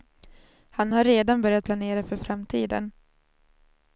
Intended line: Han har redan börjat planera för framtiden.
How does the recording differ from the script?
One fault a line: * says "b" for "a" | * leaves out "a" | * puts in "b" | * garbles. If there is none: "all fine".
all fine